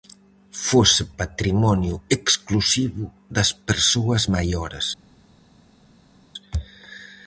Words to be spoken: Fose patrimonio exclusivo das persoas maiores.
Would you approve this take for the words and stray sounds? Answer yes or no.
yes